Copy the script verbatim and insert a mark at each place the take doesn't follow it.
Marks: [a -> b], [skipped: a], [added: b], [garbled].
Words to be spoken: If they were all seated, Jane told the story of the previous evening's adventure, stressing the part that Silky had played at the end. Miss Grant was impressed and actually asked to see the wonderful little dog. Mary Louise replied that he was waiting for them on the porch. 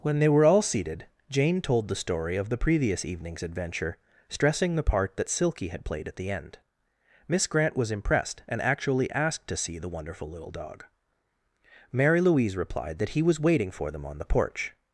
[If -> When] they were all seated, Jane told the story of the previous evening's adventure, stressing the part that Silky had played at the end. Miss Grant was impressed and actually asked to see the wonderful little dog. Mary Louise replied that he was waiting for them on the porch.